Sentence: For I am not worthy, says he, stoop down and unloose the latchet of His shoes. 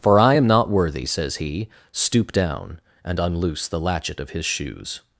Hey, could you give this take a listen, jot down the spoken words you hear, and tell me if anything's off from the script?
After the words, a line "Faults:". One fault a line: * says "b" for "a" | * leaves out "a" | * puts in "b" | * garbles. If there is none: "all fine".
For I am not worthy, says he, stoop down and unloose the latchet of His shoes.
Faults:
all fine